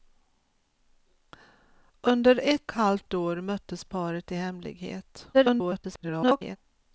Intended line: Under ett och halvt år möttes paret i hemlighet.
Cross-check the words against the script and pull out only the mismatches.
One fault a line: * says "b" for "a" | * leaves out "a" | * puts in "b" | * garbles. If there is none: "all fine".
* leaves out "och"
* garbles